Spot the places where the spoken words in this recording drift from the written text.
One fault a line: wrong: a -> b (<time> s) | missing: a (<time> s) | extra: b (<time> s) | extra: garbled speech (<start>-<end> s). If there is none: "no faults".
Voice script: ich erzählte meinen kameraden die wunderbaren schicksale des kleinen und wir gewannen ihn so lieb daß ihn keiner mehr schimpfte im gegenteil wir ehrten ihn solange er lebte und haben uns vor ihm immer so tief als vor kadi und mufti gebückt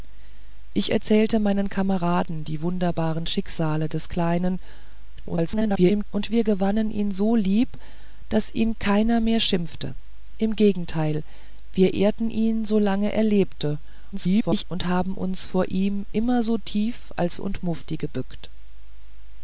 extra: garbled speech (5.2-6.0 s)
extra: garbled speech (14.1-14.6 s)
missing: vor kadi (17.4 s)